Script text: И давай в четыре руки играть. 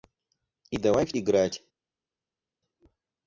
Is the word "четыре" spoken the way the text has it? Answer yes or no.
no